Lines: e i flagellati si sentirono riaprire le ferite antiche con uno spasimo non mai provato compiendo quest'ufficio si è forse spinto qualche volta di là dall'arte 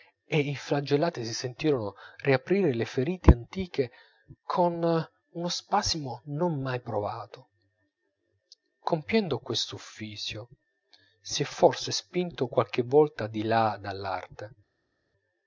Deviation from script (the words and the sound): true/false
false